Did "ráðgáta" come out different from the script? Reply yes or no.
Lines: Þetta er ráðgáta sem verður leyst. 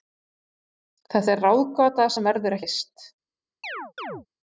no